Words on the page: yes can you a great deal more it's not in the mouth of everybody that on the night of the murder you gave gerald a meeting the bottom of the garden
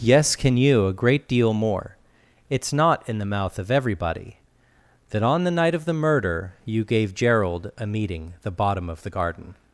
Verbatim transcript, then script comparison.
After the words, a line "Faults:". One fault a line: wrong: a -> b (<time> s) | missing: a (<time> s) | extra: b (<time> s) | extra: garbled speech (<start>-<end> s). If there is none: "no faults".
yes can you a great deal more it's not in the mouth of everybody that on the night of the murder you gave gerald a meeting the bottom of the garden
Faults:
no faults